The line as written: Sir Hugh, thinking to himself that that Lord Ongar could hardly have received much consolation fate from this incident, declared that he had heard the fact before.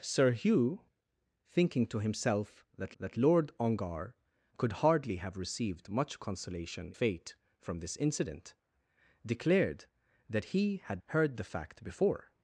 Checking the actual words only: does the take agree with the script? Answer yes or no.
yes